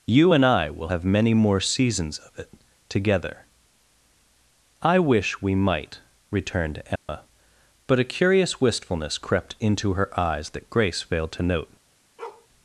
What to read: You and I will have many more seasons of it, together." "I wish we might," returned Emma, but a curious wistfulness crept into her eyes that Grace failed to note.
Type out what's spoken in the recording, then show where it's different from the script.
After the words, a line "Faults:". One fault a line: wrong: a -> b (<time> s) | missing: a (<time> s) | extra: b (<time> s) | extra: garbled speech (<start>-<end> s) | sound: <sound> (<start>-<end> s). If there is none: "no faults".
You and I will have many more seasons of it, together." "I wish we might," returned Emma, but a curious wistfulness crept into her eyes that Grace failed to note.
Faults:
sound: dropout (7.0-7.1 s)
sound: bark (12.2-12.5 s)